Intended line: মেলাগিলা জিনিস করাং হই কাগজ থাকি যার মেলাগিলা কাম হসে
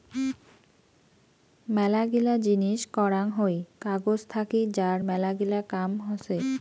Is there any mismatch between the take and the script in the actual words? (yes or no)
no